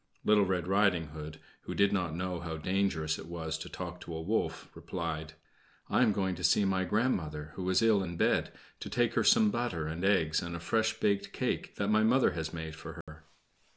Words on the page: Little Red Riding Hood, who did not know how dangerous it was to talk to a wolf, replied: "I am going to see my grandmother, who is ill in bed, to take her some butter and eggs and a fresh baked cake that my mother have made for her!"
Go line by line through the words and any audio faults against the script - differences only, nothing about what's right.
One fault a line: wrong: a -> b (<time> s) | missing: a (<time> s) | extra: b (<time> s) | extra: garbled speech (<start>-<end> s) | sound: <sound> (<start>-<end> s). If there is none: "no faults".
wrong: have -> has (12.3 s)
sound: dropout (13.0-13.1 s)